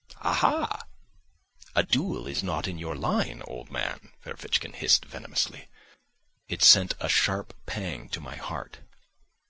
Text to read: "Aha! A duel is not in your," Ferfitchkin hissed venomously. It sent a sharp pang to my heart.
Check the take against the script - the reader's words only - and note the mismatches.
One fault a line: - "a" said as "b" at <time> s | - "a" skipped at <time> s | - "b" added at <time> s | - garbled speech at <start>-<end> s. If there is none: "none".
- "line old man" added at 2.9 s